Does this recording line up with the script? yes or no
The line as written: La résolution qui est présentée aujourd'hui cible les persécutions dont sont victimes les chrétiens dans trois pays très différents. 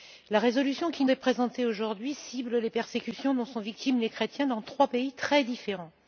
yes